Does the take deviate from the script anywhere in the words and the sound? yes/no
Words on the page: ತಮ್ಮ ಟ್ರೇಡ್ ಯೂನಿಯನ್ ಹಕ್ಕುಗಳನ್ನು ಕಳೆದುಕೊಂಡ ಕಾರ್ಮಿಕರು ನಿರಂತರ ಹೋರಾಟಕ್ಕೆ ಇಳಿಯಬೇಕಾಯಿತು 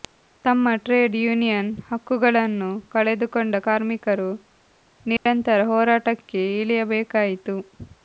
yes